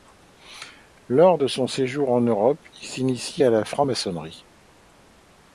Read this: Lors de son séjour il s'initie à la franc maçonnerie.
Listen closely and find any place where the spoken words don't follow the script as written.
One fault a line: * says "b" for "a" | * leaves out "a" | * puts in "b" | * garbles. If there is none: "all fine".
* puts in "en Europe"